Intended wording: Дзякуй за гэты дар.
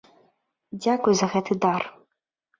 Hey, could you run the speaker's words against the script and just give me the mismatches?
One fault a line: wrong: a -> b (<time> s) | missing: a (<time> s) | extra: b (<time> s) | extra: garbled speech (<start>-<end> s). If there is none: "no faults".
no faults